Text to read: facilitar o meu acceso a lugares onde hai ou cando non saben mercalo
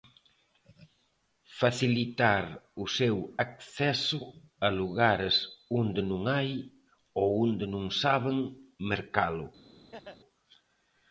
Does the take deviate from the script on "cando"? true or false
true